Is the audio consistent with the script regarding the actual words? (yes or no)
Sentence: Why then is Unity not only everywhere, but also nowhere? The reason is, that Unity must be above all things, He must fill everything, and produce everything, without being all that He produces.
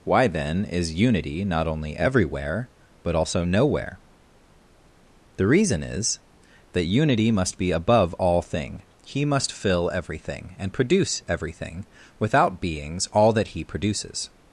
no